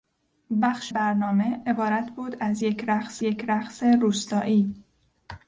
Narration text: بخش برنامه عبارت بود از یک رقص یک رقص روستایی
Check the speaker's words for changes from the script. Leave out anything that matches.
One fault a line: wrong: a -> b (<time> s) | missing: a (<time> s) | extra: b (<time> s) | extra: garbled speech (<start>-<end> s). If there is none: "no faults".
no faults